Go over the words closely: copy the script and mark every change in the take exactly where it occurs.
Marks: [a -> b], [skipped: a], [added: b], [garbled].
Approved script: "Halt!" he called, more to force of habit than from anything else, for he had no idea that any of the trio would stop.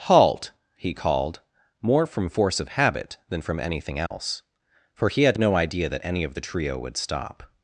"Halt!" he called, more [to -> from] force of habit than from anything else, for he had no idea that any of the trio would stop.